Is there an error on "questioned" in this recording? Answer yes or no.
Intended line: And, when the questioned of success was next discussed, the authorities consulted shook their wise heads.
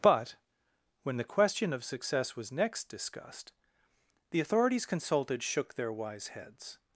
yes